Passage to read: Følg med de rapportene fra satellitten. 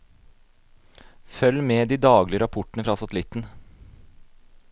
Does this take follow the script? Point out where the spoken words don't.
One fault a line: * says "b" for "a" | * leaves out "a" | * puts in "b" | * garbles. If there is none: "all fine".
* puts in "daglige"